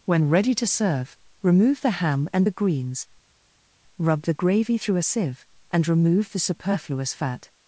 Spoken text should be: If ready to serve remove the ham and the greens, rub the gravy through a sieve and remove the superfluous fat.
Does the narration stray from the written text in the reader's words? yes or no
yes